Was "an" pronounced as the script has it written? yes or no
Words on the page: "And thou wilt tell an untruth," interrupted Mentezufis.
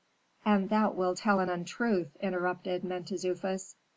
yes